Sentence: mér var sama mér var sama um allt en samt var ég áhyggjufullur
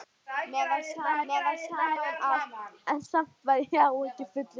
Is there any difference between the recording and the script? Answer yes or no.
no